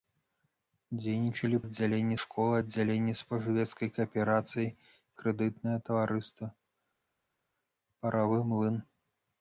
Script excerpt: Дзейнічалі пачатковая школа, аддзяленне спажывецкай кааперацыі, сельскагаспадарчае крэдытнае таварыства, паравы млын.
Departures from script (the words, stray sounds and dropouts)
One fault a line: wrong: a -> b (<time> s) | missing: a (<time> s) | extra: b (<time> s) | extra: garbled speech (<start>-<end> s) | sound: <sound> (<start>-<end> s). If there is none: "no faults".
wrong: пачатковая -> аддзяленне (1.6 s)
missing: сельскагаспадарчае (4.6 s)